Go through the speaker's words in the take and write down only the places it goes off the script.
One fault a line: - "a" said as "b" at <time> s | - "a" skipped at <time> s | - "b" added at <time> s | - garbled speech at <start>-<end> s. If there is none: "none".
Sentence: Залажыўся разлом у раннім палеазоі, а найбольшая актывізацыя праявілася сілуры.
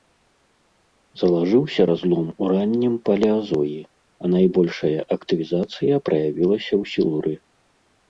- "ў" added at 6.8 s